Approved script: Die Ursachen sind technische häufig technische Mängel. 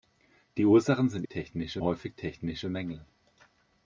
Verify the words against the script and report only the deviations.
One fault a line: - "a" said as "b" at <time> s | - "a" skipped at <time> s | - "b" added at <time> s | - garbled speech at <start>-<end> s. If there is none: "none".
none